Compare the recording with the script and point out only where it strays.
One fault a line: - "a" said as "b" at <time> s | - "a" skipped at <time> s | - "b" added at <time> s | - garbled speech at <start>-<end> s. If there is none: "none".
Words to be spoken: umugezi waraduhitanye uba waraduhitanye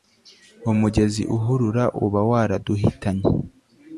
- "waraduhitanye" said as "uhurura" at 1.4 s